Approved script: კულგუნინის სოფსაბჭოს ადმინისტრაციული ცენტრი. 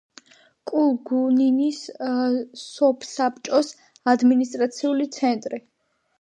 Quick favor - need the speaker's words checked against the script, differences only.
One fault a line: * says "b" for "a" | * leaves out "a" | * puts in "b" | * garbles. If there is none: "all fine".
all fine